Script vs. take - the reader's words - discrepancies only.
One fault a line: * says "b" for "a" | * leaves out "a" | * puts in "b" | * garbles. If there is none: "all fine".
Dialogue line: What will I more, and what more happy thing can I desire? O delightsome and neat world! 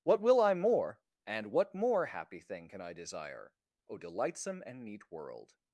all fine